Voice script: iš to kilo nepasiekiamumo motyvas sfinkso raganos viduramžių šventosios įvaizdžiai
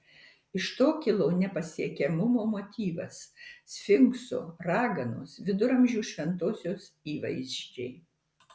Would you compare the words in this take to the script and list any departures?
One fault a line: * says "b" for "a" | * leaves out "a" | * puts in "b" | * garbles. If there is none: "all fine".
all fine